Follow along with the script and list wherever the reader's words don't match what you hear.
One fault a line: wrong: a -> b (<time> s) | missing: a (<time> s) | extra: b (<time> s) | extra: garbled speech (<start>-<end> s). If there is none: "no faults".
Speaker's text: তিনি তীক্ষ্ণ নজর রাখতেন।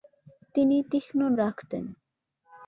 missing: নজর (1.2 s)